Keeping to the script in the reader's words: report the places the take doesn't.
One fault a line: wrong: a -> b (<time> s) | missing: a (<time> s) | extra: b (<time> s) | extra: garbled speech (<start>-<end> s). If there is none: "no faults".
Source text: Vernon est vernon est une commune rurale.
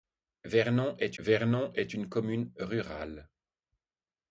no faults